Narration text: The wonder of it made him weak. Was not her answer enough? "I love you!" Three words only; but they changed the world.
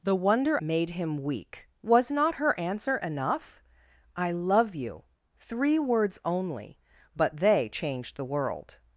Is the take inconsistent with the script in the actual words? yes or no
yes